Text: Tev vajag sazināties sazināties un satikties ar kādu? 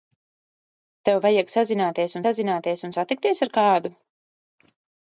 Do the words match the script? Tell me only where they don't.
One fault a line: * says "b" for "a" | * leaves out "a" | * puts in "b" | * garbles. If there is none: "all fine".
all fine